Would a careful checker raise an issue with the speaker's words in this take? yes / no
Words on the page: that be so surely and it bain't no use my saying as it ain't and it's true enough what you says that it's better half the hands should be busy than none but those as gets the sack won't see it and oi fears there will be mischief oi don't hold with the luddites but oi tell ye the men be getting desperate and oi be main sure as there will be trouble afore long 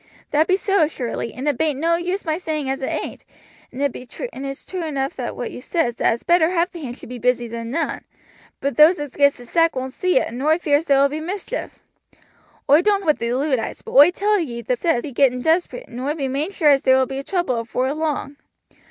yes